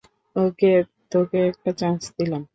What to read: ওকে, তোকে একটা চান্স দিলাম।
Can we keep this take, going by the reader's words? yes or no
yes